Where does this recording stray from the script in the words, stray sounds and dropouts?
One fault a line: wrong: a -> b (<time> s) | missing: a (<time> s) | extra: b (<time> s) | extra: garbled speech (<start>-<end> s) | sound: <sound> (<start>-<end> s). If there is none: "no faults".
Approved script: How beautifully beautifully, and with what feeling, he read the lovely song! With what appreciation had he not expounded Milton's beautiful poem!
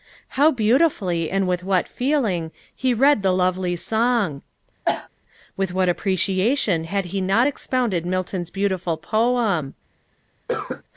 missing: beautifully (1.3 s)
sound: cough (4.8-5.1 s)
sound: cough (10.5-10.8 s)